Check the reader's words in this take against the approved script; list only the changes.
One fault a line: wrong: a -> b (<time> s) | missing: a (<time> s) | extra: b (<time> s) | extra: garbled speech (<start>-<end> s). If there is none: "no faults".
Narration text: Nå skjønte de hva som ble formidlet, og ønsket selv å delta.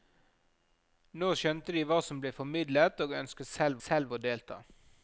extra: selv (3.8 s)